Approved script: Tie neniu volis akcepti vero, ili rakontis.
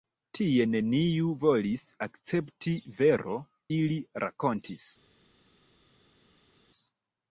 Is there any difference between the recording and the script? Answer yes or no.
no